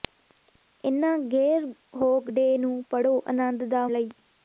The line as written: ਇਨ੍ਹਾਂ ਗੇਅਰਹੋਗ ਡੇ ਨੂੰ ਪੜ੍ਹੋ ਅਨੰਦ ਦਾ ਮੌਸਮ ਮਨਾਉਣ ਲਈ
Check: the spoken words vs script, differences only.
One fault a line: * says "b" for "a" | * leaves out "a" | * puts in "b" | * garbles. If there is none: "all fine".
* leaves out "ਮੌਸਮ ਮਨਾਉਣ"